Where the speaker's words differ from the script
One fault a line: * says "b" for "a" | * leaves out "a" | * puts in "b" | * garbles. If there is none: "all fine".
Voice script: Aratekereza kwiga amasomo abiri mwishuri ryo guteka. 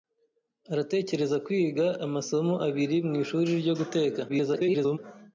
* garbles